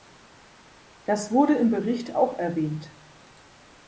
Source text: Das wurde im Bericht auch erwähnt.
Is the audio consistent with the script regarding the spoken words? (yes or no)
yes